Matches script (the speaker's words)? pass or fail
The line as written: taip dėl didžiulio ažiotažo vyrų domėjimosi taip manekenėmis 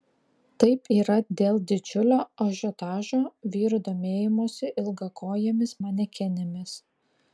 fail